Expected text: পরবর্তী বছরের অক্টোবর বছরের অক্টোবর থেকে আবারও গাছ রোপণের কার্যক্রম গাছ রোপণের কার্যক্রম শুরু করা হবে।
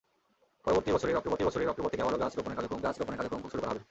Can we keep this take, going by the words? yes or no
yes